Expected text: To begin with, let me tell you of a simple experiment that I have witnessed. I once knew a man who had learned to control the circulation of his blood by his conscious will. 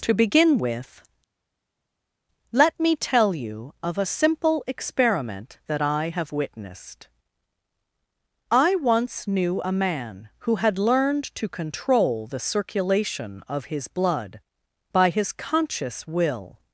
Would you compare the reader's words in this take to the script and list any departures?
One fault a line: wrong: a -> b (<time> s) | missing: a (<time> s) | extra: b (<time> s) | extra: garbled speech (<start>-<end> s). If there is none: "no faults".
no faults